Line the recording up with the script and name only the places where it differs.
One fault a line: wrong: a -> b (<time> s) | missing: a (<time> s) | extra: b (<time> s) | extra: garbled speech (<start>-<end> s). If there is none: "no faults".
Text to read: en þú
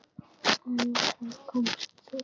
extra: þá komst (1.0 s)